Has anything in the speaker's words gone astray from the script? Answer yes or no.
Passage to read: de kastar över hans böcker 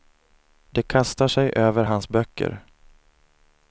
yes